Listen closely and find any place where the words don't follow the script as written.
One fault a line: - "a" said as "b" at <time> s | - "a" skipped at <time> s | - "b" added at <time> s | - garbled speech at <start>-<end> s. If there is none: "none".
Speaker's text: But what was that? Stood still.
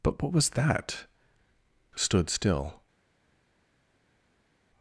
none